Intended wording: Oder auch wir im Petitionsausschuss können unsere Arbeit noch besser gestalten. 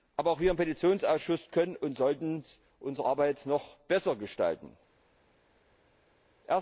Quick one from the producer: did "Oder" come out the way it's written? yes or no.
no